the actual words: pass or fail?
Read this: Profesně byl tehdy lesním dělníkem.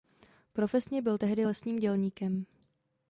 pass